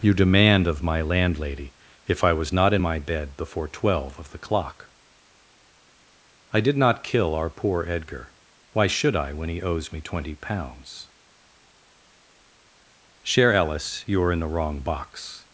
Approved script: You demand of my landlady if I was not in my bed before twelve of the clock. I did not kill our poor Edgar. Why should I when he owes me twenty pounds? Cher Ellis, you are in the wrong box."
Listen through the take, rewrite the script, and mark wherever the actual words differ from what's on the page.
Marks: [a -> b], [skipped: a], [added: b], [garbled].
You demand of my landlady if I was not in my bed before twelve of the clock. I did not kill our poor Edgar. Why should I when he owes me twenty pounds? Cher Ellis, you are in the wrong box."